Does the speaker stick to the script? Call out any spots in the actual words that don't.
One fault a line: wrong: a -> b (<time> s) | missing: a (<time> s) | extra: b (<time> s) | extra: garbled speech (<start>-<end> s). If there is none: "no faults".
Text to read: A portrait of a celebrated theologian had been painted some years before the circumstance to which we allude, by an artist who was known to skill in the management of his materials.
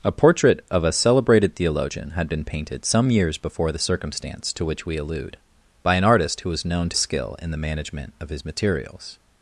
no faults